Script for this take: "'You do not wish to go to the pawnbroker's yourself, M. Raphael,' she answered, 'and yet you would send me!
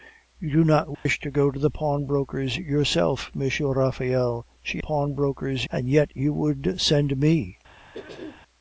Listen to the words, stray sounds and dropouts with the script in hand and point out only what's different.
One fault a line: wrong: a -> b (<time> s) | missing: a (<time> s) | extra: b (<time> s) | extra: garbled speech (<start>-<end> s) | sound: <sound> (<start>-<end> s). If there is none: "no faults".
sound: dropout (0.9-1.1 s)
wrong: answered -> pawnbroker's (4.8 s)
sound: throat clearing (7.9-8.4 s)